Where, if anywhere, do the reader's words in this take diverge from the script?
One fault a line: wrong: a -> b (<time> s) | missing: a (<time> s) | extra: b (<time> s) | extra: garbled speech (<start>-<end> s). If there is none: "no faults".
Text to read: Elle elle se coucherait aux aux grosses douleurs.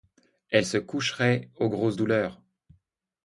missing: elle (0.7 s)
missing: aux (1.7 s)